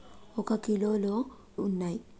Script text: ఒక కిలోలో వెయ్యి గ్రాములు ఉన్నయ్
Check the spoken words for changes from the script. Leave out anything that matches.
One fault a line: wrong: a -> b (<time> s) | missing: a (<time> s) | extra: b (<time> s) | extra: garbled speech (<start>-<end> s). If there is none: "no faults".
missing: వెయ్యి గ్రాములు (1.1 s)